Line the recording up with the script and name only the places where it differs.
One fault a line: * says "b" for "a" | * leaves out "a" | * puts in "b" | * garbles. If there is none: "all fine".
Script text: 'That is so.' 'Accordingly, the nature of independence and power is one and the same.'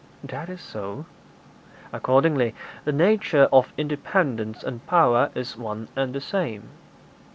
all fine